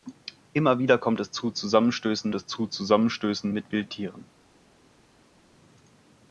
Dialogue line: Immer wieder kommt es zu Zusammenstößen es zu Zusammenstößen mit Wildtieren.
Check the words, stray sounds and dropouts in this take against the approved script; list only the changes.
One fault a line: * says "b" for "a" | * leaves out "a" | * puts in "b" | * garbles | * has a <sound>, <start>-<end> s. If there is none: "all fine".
all fine